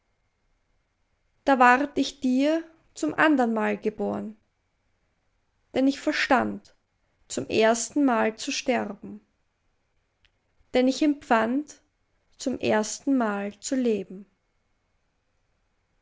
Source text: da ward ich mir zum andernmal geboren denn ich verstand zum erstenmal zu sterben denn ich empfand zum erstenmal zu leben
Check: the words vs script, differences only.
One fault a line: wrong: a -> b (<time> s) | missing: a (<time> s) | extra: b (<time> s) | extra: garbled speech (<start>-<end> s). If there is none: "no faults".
wrong: mir -> dir (2.2 s)